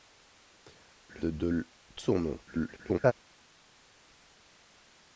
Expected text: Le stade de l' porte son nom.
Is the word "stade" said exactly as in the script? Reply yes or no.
no